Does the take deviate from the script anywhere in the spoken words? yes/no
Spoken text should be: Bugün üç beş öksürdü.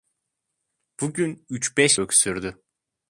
no